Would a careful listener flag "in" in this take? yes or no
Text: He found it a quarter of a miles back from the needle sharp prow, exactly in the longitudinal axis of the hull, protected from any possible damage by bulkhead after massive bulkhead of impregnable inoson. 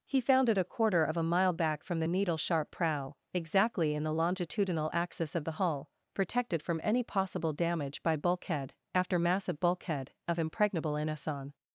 no